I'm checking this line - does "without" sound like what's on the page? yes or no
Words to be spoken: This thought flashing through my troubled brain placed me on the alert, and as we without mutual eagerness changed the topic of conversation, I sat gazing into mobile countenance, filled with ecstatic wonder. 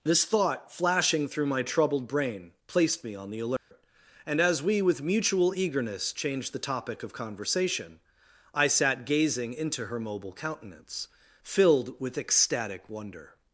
no